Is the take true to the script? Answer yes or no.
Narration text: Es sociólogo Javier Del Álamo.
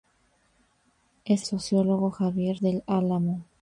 yes